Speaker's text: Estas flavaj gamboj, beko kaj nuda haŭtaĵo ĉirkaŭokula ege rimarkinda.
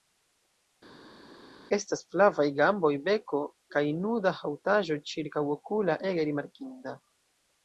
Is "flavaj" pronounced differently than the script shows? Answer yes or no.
no